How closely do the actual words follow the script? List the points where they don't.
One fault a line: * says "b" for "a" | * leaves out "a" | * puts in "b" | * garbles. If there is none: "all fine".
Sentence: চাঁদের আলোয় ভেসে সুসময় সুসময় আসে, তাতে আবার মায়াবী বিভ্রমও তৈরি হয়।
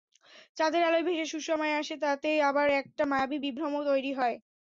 * leaves out "সুসময়"
* puts in "একটা"